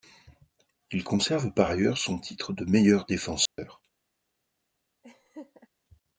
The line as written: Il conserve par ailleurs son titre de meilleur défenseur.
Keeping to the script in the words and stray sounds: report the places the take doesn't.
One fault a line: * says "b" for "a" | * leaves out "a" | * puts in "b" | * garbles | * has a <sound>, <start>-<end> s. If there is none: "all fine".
* has a dropout, 3.5-3.6 s
* has a laugh, 5.0-5.7 s